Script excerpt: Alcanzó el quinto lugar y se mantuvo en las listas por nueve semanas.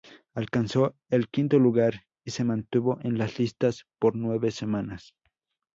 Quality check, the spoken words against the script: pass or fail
pass